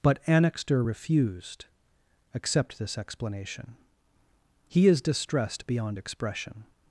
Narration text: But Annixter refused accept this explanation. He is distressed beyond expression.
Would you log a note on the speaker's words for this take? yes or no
no